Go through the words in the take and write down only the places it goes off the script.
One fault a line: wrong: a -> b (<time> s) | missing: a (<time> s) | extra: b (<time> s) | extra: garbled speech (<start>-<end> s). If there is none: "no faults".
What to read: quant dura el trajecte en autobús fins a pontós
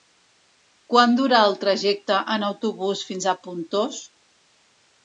no faults